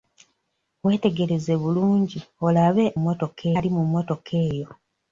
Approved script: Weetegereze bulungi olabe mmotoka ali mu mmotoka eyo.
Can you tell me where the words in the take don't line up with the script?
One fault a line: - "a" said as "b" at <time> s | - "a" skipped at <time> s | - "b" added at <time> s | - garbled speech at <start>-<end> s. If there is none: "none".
none